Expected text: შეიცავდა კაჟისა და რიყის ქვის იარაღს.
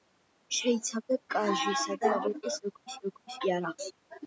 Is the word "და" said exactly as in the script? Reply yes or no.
yes